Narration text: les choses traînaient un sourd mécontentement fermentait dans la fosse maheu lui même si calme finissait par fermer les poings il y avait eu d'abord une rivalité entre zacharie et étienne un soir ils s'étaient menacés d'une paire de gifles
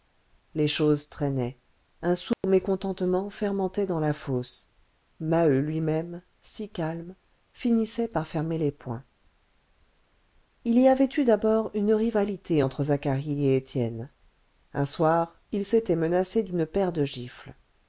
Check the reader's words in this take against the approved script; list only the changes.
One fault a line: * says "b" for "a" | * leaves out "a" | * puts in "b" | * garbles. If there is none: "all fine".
all fine